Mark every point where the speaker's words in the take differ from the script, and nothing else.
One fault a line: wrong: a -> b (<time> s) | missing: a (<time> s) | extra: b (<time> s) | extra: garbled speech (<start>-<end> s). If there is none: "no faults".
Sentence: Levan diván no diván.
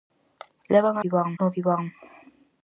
no faults